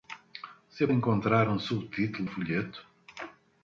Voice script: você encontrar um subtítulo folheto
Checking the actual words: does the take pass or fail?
pass